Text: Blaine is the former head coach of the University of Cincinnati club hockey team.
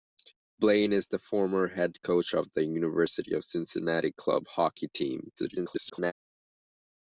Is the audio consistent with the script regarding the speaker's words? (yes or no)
no